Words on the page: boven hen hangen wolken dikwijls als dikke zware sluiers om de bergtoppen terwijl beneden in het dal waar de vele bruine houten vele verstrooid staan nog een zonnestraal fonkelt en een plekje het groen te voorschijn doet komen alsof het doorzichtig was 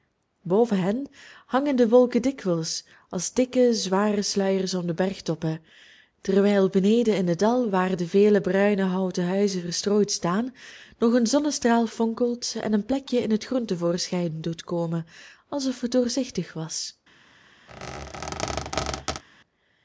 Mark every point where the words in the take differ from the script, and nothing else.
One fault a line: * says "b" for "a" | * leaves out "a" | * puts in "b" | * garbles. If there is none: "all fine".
* puts in "de"
* says "huizen" for "vele"
* puts in "in"